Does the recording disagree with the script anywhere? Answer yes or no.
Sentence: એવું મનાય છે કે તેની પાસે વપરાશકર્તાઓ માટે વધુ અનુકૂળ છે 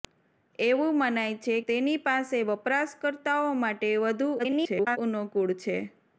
yes